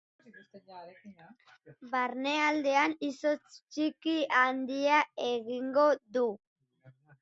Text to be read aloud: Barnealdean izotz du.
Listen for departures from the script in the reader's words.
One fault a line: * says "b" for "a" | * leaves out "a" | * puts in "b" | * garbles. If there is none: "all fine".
* puts in "txiki handia egingo"